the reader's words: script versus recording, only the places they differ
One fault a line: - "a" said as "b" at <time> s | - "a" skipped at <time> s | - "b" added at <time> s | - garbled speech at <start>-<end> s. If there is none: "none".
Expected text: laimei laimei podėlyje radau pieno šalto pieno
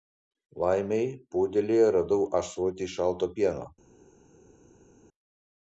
- "laimei" skipped at 1.1 s
- "pieno" said as "ąsotį" at 2.4 s